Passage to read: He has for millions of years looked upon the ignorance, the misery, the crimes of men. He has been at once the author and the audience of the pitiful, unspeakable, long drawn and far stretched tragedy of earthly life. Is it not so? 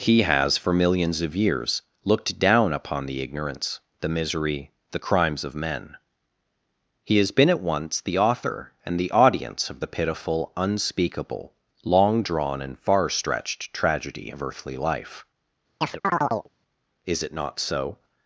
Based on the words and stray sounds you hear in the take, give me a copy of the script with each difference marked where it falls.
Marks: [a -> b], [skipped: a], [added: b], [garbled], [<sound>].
He has for millions of years looked [added: down] upon the ignorance, the misery, the crimes of men. He has been at once the author and the audience of the pitiful, unspeakable, long drawn and far stretched tragedy of earthly life. [chirp] Is it not so?